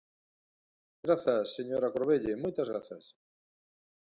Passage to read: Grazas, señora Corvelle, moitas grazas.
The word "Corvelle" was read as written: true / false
true